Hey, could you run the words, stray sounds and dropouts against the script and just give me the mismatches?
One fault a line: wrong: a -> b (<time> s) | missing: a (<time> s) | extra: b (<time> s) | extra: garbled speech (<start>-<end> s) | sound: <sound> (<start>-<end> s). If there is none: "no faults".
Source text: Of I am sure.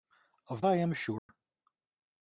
sound: dropout (1.2-1.3 s)